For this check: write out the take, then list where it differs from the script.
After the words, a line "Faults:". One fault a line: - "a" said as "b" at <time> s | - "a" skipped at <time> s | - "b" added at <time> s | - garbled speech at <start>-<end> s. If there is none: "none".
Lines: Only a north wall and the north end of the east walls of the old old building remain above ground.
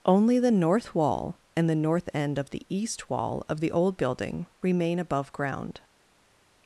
Only the north wall and the north end of the east wall of the old building remain above ground.
Faults:
- "a" said as "the" at 0.4 s
- "walls" said as "wall" at 3.1 s
- "old" skipped at 4.0 s